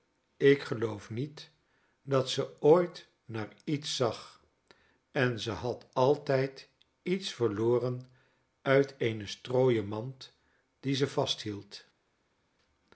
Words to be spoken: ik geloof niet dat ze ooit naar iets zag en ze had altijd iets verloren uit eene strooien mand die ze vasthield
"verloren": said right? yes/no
yes